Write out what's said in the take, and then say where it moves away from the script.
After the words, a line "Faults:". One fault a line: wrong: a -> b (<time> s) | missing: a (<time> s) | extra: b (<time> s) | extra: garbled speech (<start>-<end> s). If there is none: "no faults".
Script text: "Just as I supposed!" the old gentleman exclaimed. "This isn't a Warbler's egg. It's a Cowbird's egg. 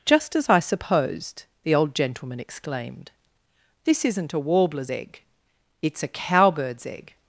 "Just as I supposed!" the old gentleman exclaimed. "This isn't a Warbler's egg. It's a Cowbird's egg.
Faults:
no faults